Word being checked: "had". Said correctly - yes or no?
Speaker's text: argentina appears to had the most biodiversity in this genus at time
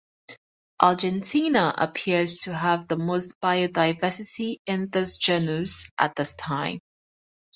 no